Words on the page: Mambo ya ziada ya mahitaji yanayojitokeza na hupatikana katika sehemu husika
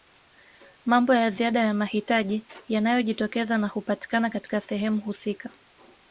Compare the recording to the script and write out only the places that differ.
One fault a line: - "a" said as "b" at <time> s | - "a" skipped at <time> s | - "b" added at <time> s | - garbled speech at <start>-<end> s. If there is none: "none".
none